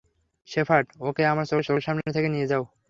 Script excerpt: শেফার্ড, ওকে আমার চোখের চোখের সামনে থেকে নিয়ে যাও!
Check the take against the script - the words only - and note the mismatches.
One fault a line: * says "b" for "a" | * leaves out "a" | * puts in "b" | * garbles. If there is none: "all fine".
all fine